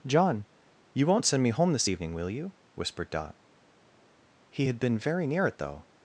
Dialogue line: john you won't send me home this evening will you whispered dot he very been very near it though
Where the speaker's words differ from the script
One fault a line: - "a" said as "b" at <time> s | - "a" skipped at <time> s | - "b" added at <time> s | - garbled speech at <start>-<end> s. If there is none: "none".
- "very" said as "had" at 4.7 s